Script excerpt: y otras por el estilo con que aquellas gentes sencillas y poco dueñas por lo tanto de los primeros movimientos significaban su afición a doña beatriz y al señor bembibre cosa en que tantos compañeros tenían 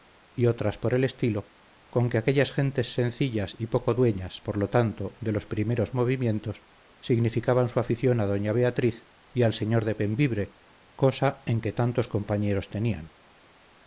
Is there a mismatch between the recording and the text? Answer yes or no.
yes